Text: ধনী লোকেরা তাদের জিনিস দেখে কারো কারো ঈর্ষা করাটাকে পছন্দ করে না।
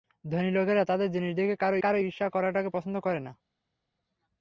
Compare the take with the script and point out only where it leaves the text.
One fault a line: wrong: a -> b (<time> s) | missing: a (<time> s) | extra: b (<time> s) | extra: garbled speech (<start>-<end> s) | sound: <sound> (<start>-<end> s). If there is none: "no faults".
no faults